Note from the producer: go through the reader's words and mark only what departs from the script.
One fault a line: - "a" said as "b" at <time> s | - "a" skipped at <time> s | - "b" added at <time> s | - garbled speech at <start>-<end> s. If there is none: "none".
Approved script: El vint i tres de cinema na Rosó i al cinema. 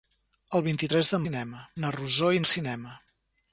none